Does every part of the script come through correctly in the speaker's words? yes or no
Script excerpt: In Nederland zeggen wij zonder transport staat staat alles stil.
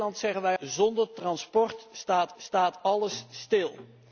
yes